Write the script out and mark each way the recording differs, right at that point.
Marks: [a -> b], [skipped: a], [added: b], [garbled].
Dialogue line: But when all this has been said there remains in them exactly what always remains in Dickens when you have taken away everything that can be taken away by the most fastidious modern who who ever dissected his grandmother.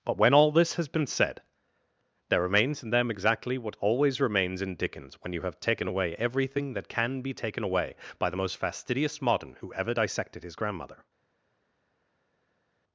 But when all this has been said there remains in them exactly what always remains in Dickens when you have taken away everything that can be taken away by the most fastidious modern who [skipped: who] ever dissected his grandmother.